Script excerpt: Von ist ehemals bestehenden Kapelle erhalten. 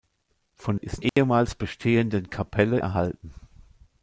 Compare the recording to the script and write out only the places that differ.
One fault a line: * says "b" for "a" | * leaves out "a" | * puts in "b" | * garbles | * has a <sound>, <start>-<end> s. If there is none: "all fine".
* has a dropout, 1.1-1.2 s